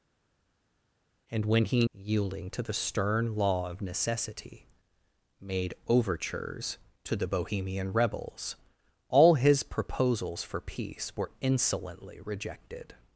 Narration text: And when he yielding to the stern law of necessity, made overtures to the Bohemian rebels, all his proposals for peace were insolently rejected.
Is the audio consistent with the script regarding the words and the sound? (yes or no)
yes